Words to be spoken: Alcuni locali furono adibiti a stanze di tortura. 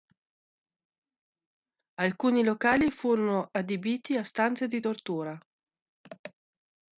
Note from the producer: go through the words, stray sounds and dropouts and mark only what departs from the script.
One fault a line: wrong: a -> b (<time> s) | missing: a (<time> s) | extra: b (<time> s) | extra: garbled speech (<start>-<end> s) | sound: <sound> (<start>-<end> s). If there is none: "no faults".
no faults